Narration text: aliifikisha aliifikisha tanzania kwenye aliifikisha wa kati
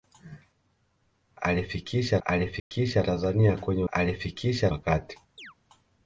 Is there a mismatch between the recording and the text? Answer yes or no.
no